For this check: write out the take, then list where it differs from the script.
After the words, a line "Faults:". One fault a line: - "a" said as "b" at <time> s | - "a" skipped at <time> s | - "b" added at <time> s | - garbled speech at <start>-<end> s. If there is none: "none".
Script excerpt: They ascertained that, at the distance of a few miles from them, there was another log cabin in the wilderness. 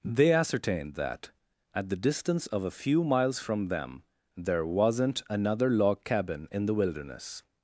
They ascertained that, at the distance of a few miles from them, there wasn't another log cabin in the wilderness.
Faults:
- "was" said as "wasn't" at 4.7 s